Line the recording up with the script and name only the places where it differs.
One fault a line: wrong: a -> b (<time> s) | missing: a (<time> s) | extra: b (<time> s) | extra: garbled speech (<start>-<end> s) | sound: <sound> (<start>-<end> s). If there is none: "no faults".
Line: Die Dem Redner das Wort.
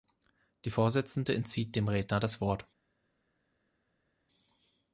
extra: Vorsitzende entzieht (0.7 s)